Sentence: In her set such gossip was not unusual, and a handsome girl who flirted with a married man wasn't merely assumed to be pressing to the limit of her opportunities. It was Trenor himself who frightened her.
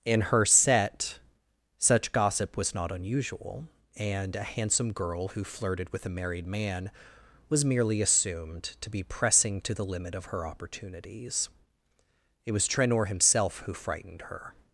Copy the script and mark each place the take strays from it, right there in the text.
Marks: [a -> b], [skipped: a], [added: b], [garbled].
In her set such gossip was not unusual, and a handsome girl who flirted with a married man [wasn't -> was] merely assumed to be pressing to the limit of her opportunities. It was Trenor himself who frightened her.